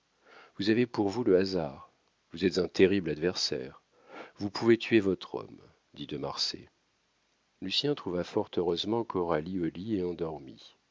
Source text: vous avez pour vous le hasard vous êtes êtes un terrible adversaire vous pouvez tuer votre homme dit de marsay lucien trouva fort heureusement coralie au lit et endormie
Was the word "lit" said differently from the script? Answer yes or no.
no